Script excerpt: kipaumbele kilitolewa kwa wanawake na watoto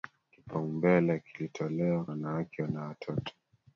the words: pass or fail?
fail